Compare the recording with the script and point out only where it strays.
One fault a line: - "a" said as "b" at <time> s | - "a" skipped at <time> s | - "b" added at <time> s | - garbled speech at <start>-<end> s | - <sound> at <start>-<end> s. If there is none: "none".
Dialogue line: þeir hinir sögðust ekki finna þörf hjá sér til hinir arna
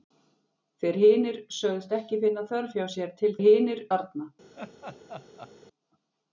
- laugh at 4.6-5.5 s